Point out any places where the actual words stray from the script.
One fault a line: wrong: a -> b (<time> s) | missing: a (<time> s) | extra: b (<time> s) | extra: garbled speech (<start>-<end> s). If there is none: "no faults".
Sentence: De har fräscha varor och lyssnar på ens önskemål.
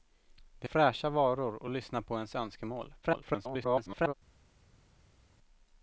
missing: har (0.7 s)
extra: garbled speech (3.0-4.1 s)